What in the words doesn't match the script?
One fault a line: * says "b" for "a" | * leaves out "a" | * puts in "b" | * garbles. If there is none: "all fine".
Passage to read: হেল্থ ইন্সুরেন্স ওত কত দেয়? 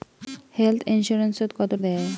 all fine